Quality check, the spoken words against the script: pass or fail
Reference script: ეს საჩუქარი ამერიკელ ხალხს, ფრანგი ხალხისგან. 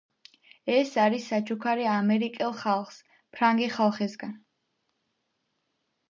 fail